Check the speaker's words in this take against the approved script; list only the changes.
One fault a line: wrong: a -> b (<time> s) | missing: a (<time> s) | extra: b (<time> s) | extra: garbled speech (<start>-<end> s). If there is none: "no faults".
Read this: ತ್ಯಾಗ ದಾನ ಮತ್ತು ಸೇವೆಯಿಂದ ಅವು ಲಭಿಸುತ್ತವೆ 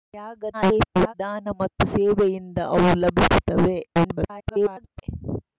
extra: garbled speech (0.5-1.1 s)
extra: garbled speech (3.9-5.0 s)